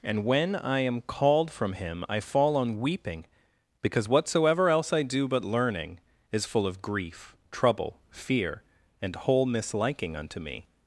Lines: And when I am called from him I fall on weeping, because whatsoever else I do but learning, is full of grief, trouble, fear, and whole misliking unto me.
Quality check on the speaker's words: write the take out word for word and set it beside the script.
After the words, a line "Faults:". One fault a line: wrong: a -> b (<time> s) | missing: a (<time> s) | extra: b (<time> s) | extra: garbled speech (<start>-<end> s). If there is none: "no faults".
And when I am called from him I fall on weeping, because whatsoever else I do but learning, is full of grief, trouble, fear, and whole misliking unto me.
Faults:
no faults